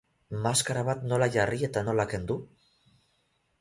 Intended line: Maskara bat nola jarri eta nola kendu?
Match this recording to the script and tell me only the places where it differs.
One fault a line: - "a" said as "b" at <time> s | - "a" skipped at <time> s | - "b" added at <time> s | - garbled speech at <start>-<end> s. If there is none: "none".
none